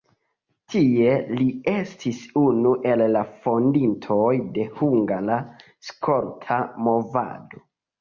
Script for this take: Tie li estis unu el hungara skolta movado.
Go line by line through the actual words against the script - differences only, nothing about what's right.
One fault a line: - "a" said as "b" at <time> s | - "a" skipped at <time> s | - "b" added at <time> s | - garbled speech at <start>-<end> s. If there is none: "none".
- "la fondintoj de" added at 3.1 s